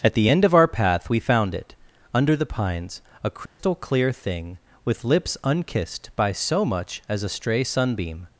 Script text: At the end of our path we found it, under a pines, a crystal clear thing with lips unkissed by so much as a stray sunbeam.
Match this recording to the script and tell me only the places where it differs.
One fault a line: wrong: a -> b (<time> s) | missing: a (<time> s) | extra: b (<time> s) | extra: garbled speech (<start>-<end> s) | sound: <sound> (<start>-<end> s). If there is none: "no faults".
wrong: a -> the (2.4 s)
sound: dropout (3.5-3.6 s)